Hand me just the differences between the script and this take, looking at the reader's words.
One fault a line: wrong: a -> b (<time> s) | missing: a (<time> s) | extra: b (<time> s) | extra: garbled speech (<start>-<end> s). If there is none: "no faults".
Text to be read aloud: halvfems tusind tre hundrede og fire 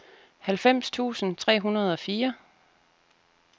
no faults